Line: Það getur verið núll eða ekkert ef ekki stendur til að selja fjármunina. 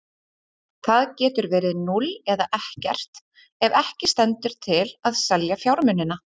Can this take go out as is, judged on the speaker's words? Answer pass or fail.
pass